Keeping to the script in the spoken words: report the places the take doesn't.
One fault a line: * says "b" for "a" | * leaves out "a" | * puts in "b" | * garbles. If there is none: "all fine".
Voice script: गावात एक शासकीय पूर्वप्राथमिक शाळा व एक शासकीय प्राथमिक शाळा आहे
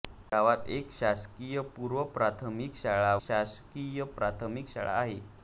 * leaves out "व एक"